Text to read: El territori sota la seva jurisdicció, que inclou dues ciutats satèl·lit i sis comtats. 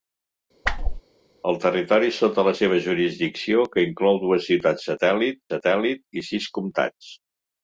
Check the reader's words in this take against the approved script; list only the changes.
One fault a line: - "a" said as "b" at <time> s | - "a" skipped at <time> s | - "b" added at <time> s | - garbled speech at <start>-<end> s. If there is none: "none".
- "satèl·lit" added at 5.5 s